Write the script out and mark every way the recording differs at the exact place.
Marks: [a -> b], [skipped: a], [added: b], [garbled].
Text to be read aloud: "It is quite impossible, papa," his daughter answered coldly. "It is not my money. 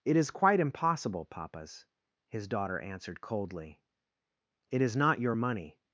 "It is quite impossible, [papa," -> papas] his daughter answered coldly. "It is not [my -> your] money.